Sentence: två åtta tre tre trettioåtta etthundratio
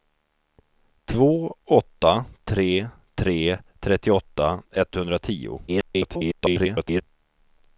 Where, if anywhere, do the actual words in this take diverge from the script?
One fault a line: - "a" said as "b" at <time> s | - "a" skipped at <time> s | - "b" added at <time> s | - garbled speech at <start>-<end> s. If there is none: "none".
- garbled speech at 5.7-7.0 s